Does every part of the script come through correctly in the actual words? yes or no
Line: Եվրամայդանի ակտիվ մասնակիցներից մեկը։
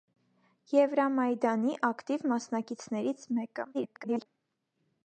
no